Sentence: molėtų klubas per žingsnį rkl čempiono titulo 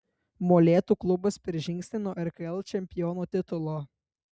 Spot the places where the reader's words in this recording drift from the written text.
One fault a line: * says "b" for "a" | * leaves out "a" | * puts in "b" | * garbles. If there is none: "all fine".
* puts in "nuo"